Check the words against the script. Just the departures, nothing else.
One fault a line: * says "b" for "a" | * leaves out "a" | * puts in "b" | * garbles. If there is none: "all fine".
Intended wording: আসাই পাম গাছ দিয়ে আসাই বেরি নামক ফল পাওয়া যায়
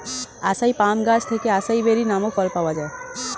* says "থেকে" for "দিয়ে"